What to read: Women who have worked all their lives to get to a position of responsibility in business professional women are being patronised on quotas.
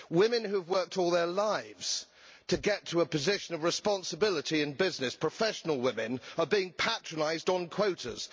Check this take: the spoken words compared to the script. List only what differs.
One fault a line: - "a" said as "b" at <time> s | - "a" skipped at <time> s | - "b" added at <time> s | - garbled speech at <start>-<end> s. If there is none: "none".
none